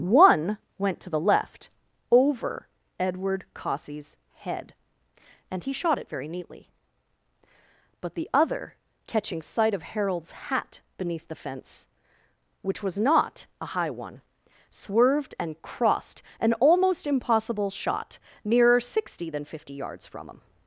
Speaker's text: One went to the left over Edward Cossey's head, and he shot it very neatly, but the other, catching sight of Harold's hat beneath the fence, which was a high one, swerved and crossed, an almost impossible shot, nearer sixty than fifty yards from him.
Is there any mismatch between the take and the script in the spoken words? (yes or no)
yes